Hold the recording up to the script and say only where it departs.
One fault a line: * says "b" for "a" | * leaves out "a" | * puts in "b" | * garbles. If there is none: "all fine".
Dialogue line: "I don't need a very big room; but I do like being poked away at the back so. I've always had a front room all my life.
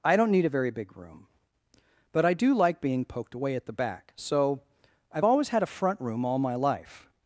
all fine